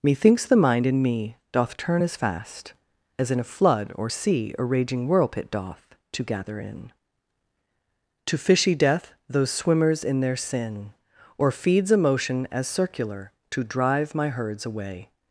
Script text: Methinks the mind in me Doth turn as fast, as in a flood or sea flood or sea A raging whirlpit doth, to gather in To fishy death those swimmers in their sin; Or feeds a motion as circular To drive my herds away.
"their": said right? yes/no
yes